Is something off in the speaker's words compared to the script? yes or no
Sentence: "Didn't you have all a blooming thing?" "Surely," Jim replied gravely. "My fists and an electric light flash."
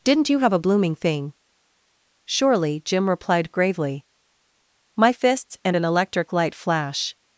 yes